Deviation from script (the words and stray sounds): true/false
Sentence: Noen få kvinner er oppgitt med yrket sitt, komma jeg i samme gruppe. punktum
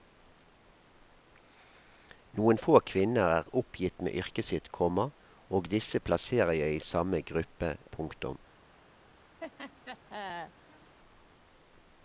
true